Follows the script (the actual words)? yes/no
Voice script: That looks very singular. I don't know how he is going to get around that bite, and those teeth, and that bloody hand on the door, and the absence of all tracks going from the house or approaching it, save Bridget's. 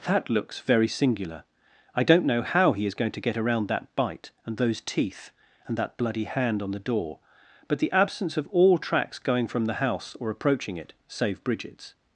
no